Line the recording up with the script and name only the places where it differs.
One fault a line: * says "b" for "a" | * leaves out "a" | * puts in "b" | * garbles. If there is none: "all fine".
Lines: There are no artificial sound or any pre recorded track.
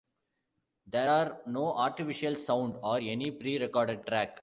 all fine